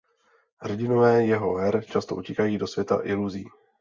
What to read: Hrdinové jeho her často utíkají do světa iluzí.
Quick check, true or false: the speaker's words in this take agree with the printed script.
true